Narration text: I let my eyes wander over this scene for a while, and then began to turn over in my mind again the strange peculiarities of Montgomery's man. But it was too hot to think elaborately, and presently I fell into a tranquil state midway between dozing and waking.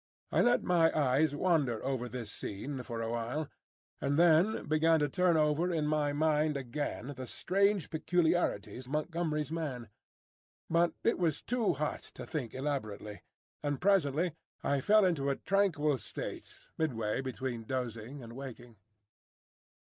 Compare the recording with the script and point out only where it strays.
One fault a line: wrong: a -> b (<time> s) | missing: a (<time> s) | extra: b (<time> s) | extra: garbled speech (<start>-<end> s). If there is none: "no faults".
missing: of (8.9 s)